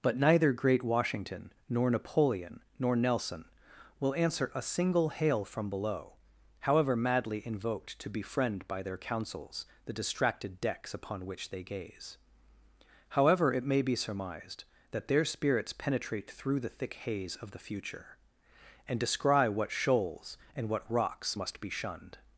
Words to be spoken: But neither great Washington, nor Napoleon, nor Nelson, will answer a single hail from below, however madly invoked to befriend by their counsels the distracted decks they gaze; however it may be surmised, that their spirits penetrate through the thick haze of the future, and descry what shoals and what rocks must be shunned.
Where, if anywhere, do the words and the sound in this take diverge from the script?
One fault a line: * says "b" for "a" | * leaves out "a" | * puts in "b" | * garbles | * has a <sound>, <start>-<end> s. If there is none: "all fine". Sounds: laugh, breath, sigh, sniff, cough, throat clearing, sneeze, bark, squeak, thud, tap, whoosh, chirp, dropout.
* puts in "upon which"